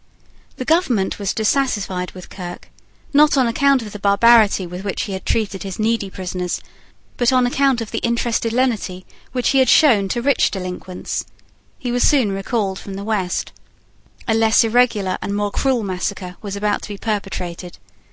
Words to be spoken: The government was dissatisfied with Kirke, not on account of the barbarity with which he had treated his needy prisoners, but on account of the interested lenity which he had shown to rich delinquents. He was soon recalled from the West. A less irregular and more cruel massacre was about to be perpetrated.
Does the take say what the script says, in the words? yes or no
yes